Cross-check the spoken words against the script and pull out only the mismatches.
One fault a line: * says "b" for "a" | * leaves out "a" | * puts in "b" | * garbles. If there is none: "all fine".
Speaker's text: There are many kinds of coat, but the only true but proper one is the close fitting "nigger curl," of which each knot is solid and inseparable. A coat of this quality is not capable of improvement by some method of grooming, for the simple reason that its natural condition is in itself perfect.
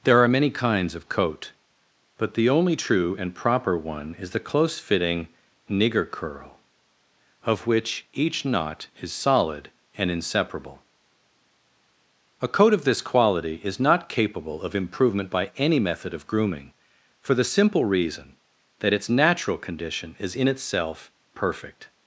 * says "and" for "but"
* says "any" for "some"